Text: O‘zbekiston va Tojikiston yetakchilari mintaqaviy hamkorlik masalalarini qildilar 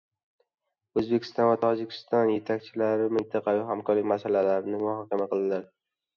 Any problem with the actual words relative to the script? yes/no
yes